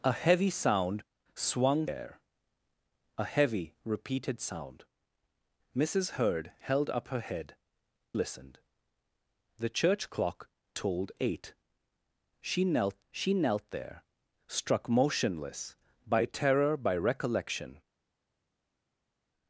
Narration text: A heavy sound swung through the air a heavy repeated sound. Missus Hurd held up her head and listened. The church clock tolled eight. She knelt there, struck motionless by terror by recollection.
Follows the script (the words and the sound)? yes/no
no